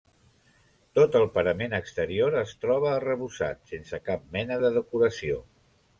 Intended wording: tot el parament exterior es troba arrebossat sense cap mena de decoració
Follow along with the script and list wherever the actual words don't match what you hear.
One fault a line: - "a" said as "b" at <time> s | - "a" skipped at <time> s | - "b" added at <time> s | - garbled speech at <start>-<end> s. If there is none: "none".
none